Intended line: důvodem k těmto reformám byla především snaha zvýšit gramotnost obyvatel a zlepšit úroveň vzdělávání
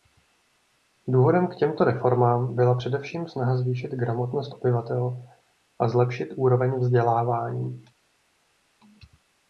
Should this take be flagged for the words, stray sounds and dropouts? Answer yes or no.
no